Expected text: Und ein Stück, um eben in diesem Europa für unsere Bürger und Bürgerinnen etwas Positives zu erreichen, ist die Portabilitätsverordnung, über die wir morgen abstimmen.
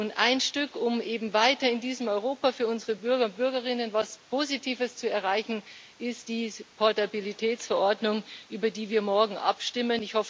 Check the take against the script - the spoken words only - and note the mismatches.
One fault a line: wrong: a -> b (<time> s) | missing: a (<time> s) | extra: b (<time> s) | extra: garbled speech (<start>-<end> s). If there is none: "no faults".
extra: weiter (1.3 s)